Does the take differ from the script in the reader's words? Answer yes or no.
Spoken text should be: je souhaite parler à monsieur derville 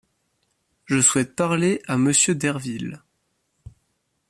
no